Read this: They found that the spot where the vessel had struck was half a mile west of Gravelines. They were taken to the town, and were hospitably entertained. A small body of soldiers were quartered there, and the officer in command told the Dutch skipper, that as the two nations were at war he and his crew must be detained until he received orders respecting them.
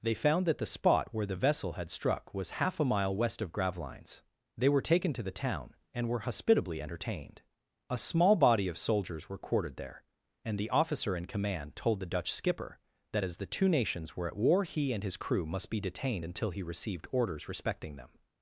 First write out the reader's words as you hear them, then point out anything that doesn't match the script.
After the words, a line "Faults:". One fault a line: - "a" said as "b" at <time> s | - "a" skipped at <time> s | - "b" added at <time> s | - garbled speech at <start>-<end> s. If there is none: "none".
They found that the spot where the vessel had struck was half a mile west of Gravelines. They were taken to the town, and were hospitably entertained. A small body of soldiers were quartered there, and the officer in command told the Dutch skipper, that as the two nations were at war he and his crew must be detained until he received orders respecting them.
Faults:
none